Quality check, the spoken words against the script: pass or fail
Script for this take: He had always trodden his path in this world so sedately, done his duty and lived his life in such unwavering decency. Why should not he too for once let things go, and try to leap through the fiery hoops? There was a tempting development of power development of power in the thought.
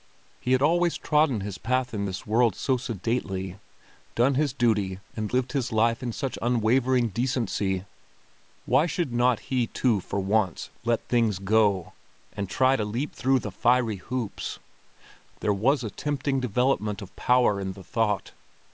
fail